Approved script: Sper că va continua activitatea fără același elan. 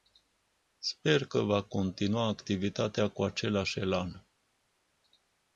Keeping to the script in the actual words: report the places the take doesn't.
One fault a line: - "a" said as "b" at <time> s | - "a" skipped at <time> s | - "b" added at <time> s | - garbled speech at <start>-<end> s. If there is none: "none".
- "fără" said as "cu" at 3.1 s